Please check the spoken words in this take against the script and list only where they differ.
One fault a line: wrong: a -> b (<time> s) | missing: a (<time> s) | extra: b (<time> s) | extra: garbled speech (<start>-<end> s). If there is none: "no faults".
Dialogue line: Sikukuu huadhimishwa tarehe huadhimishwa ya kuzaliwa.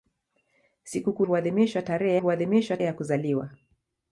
no faults